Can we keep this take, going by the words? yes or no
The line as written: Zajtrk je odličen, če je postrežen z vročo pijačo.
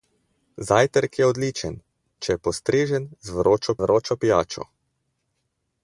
no